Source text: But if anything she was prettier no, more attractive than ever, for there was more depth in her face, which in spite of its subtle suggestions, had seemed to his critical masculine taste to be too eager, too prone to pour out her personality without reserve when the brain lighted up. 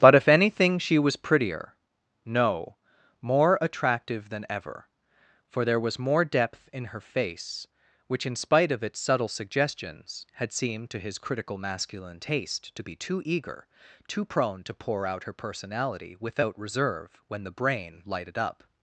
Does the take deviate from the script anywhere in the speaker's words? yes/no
no